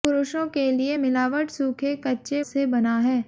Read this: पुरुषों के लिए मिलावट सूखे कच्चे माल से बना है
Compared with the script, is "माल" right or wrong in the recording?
wrong